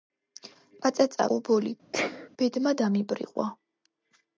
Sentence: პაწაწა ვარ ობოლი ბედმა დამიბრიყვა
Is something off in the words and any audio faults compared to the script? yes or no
yes